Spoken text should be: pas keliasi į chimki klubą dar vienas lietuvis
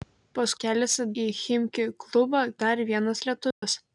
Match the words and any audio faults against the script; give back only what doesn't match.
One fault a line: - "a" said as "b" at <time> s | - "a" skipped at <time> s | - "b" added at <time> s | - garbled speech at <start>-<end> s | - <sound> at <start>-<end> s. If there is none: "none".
- dropout at 3.5-3.6 s